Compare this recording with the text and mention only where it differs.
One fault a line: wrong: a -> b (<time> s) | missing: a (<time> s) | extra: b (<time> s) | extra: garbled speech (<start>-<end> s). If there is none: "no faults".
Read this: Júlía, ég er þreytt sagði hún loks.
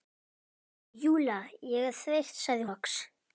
missing: hún (2.7 s)